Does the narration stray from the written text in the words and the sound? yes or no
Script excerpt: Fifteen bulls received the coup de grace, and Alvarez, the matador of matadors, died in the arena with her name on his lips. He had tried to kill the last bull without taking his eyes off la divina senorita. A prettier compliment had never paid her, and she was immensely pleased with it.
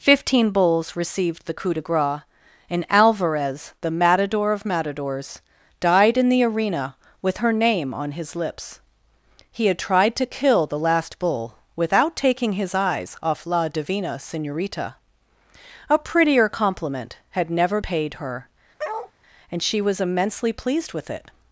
yes